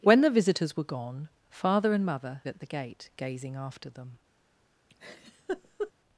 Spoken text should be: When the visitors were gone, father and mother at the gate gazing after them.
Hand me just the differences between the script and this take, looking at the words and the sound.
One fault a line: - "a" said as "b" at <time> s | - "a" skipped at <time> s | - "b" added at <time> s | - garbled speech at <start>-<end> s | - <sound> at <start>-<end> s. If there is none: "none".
- laugh at 4.9-5.9 s